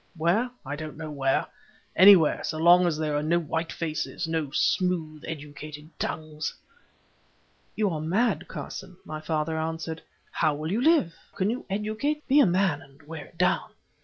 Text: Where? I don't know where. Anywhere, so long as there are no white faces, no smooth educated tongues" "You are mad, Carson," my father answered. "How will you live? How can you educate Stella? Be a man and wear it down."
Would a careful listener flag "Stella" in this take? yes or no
yes